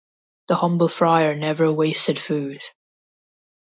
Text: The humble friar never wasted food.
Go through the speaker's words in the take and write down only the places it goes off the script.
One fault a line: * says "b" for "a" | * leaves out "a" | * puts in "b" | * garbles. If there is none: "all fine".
all fine